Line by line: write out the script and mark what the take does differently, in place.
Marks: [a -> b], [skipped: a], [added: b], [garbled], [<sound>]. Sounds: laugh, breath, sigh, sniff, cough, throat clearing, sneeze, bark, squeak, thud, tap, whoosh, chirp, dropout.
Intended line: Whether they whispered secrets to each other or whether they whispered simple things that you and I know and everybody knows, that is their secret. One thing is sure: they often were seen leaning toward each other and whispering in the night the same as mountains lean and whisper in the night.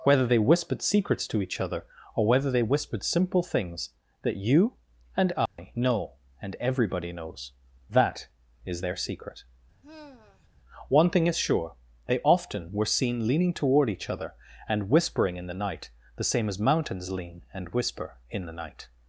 Whether they whispered secrets to each other or whether they whispered simple things that you and I [dropout] know and everybody knows, that is their secret. [sigh] One thing is sure: they often were seen leaning toward each other and whispering in the night the same as mountains lean and whisper in the night.